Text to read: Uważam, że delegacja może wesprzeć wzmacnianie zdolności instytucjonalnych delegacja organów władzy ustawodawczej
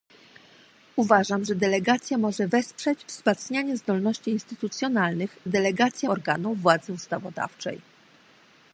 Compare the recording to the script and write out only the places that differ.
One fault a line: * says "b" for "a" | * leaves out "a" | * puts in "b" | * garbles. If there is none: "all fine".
all fine